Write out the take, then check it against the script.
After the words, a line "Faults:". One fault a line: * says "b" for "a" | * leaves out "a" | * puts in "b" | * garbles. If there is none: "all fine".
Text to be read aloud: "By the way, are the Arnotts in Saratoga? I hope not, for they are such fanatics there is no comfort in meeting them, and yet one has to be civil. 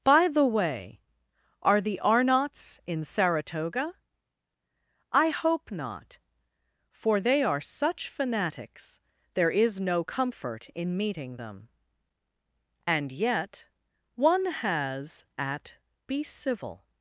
"By the way, are the Arnotts in Saratoga? I hope not, for they are such fanatics there is no comfort in meeting them, and yet one has at be civil.
Faults:
* says "at" for "to"